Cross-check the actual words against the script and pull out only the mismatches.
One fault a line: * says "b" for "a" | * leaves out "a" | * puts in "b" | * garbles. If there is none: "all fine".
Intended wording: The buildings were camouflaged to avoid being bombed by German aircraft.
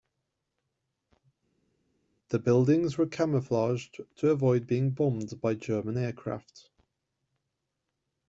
all fine